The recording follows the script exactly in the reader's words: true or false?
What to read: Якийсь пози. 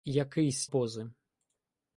true